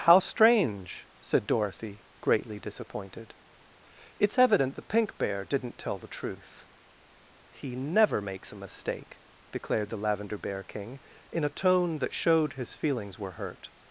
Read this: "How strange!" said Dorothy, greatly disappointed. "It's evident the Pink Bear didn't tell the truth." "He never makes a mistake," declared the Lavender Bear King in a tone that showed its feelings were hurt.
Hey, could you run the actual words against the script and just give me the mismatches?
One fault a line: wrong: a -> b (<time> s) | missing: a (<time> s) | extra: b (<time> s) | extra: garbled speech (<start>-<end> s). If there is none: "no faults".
wrong: its -> his (12.5 s)